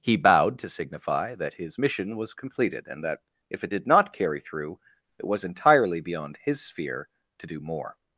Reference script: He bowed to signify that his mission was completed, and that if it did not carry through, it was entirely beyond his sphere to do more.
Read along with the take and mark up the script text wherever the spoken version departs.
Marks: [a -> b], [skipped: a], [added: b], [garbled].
He bowed to signify that his mission was completed, and that if it did not carry through, it was entirely beyond his sphere to do more.